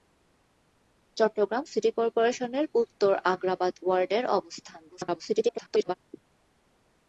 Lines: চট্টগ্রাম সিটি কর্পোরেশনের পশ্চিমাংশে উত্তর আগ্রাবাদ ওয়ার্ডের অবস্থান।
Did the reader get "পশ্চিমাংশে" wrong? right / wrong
wrong